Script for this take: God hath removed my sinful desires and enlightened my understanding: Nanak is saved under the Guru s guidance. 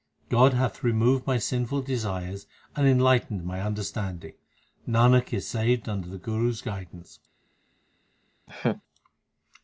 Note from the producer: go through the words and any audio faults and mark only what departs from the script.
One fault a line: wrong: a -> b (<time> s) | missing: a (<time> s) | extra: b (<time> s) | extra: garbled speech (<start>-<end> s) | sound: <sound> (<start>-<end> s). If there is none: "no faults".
sound: laugh (8.5-8.8 s)